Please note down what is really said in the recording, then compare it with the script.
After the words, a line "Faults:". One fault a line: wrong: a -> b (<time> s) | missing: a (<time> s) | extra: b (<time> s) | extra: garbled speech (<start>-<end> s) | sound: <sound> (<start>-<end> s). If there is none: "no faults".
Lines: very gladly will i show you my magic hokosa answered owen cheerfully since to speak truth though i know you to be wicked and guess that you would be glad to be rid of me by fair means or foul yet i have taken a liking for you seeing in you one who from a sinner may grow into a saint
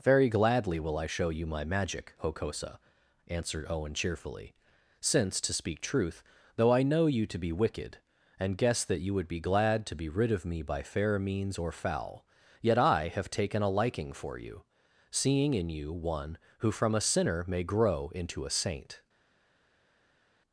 very gladly will i show you my magic hokosa answered owen cheerfully since to speak truth though i know you to be wicked and guess that you would be glad to be rid of me by fair means or foul yet i have taken a liking for you seeing in you one who from a sinner may grow into a saint
Faults:
no faults